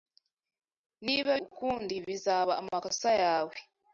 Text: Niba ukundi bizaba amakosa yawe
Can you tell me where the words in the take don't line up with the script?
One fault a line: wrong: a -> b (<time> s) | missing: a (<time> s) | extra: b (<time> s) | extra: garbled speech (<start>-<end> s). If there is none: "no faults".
no faults